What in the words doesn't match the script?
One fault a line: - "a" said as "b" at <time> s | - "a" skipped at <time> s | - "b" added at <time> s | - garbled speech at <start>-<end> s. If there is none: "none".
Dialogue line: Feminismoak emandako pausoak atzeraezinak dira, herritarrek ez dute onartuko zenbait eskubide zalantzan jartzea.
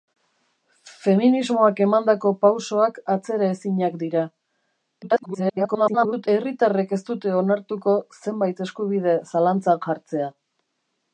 - garbled speech at 5.0-6.3 s